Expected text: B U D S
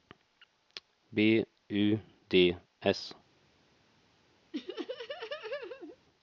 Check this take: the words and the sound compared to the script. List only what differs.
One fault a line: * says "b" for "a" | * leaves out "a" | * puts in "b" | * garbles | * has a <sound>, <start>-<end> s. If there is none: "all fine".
* has a laugh, 4.5-6.0 s